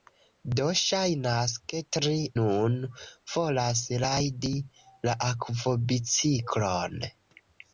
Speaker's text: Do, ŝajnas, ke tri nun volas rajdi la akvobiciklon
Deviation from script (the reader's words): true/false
false